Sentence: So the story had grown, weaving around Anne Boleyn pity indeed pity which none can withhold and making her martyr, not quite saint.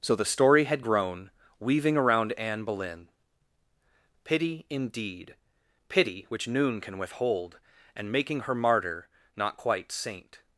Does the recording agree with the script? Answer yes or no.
no